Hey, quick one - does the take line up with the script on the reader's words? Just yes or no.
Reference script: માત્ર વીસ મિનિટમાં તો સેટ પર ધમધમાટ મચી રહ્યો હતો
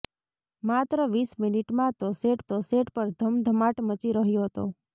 no